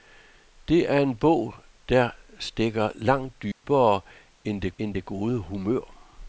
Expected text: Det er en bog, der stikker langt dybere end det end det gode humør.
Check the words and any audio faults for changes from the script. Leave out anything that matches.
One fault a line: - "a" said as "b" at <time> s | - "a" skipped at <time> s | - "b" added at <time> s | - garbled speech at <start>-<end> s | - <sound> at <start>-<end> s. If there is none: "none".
- dropout at 3.5-3.6 s